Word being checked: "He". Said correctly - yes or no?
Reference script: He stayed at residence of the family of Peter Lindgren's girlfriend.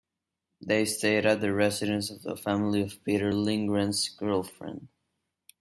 no